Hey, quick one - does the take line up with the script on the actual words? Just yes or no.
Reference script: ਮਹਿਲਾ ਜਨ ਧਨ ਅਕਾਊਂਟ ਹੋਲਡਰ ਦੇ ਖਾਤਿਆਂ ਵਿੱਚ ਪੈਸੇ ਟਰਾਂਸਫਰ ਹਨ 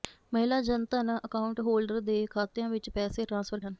yes